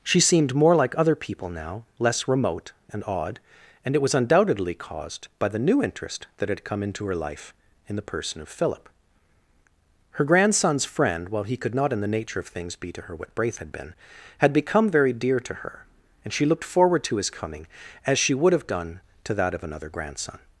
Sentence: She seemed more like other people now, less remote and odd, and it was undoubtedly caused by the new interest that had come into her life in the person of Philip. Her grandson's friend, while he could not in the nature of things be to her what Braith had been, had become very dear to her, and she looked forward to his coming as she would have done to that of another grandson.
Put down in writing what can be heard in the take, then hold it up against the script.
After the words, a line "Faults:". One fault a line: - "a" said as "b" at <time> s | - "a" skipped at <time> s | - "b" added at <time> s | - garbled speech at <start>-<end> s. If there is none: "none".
She seemed more like other people now, less remote and odd, and it was undoubtedly caused by the new interest that had come into her life in the person of Philip. Her grandson's friend, while he could not in the nature of things be to her what Braith had been, had become very dear to her, and she looked forward to his coming as she would have done to that of another grandson.
Faults:
none